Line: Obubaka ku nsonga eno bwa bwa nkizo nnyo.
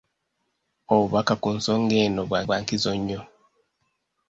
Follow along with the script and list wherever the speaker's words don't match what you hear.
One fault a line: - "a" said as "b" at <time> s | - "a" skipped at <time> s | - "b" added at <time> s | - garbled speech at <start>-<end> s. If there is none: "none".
none